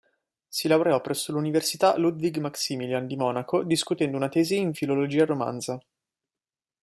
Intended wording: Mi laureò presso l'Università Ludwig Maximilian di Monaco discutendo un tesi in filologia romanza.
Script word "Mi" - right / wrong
wrong